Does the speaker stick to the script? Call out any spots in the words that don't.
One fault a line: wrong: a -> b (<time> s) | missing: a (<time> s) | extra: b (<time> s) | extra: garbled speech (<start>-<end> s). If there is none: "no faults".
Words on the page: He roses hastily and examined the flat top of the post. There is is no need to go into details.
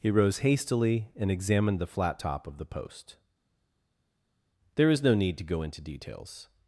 wrong: roses -> rose (0.1 s)
missing: is (5.0 s)